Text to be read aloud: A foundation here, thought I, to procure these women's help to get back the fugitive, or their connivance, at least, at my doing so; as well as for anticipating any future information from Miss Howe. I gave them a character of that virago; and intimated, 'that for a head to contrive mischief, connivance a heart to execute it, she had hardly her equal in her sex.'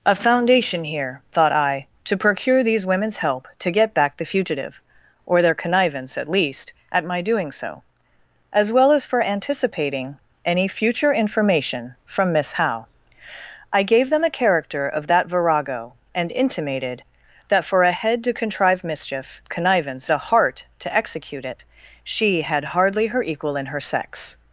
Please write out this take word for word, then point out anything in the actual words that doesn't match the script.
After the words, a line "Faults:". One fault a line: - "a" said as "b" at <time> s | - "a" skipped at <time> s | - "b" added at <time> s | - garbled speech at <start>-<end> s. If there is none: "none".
A foundation here, thought I, to procure these women's help to get back the fugitive, or their connivance, at least, at my doing so; as well as for anticipating any future information from Miss Howe. I gave them a character of that virago; and intimated, 'that for a head to contrive mischief, connivance a heart to execute it, she had hardly her equal in her sex.'
Faults:
none